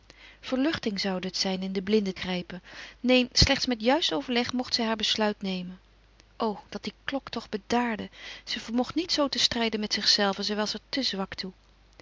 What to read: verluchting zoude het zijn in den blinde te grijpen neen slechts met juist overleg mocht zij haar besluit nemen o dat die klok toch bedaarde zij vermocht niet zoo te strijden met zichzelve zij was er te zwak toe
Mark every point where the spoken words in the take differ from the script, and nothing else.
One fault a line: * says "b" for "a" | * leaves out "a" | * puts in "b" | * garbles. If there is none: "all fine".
* leaves out "te"